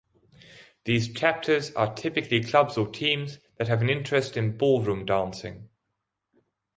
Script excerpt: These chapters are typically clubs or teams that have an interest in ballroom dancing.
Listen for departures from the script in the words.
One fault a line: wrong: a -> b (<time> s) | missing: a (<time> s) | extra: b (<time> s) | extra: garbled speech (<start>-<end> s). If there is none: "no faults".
no faults